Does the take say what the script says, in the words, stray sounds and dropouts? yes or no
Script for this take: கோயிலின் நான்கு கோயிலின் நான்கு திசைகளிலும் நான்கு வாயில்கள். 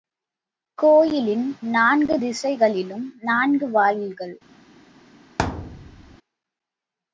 no